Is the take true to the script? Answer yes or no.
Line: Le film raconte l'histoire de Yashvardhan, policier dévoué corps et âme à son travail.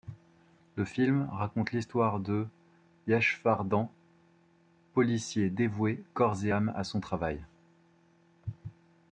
yes